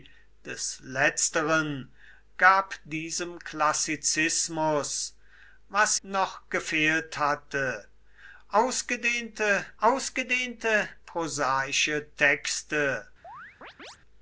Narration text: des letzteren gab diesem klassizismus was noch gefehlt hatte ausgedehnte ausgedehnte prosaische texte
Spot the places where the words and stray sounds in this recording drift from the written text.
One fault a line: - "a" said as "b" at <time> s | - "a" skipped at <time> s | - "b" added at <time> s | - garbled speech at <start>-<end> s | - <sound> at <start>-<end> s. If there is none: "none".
- chirp at 13.2-14.0 s